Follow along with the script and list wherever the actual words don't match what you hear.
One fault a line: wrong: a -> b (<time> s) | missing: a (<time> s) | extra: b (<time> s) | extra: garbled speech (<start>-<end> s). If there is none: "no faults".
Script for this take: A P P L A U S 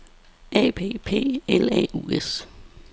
no faults